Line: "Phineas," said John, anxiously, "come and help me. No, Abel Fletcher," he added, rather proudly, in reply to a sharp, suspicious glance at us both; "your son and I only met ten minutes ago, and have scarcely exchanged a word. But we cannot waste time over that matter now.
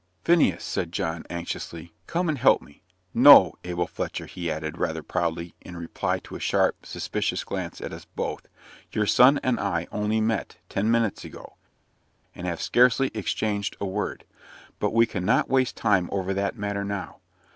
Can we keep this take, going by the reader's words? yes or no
yes